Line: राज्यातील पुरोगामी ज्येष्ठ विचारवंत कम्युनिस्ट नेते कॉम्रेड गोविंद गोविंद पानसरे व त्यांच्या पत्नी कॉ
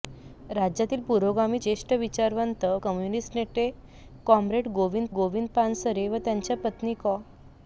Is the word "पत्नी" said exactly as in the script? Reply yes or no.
yes